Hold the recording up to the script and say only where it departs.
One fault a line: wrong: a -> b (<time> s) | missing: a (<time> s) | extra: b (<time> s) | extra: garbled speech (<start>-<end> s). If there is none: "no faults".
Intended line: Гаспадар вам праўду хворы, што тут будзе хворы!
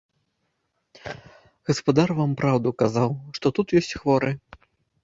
wrong: хворы -> казаў (2.8 s)
wrong: будзе -> ёсць (3.8 s)